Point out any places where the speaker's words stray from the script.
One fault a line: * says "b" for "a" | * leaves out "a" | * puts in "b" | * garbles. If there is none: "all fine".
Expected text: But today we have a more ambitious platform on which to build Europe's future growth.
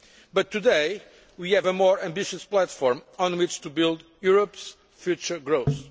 all fine